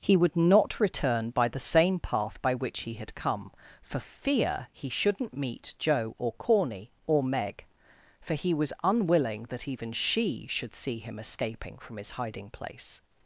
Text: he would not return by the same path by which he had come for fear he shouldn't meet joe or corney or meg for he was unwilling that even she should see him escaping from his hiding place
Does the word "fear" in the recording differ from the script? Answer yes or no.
no